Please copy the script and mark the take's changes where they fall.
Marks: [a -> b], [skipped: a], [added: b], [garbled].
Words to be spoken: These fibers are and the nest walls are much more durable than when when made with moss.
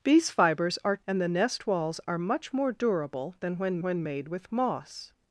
These fibers are and the nest walls are much more durable than when when made with moss.